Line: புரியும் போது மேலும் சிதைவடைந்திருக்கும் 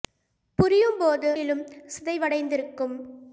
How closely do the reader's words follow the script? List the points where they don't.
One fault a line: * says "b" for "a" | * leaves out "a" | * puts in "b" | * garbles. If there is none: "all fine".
all fine